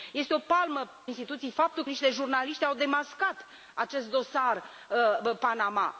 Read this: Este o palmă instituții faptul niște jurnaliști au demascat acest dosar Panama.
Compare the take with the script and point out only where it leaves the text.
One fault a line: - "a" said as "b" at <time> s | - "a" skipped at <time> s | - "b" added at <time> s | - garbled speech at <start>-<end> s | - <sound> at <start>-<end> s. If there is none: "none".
none